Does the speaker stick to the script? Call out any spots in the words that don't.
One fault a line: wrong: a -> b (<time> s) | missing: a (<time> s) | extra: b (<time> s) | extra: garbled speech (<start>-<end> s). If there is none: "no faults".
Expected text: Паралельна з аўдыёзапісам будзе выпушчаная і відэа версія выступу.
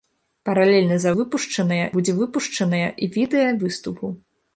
wrong: аўдыёзапісам -> выпушчаная (1.2 s)
missing: версія (3.5 s)